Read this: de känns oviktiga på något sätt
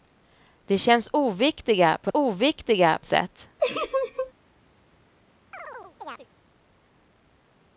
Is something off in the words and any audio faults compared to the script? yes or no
yes